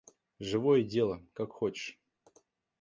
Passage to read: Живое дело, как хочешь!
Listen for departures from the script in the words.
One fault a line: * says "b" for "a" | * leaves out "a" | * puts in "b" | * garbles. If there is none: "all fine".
all fine